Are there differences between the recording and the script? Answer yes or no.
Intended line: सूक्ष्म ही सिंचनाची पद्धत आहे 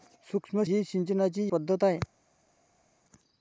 no